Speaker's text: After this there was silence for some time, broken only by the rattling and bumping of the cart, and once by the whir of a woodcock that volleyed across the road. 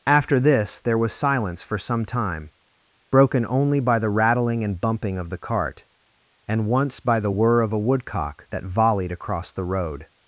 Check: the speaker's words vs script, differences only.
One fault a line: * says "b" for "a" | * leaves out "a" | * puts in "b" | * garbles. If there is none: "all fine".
all fine